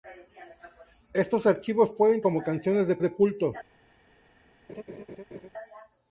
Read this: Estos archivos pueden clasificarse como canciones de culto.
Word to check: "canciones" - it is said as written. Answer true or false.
true